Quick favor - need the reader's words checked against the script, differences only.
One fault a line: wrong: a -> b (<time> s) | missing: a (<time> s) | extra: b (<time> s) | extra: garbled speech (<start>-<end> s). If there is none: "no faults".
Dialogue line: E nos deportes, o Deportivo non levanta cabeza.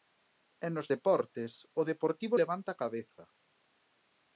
missing: non (2.3 s)